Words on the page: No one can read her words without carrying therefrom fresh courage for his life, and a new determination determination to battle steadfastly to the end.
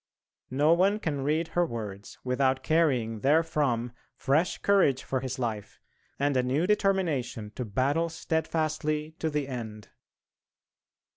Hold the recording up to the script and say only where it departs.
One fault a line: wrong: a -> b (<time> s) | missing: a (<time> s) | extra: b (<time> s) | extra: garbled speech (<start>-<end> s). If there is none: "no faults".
missing: determination (7.5 s)